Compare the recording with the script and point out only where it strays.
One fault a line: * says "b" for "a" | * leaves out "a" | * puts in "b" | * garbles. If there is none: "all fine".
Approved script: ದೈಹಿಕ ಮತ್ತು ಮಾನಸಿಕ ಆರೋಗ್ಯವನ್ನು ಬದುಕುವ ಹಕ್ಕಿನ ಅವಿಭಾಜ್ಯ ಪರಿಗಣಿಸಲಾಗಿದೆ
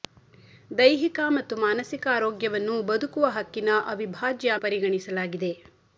all fine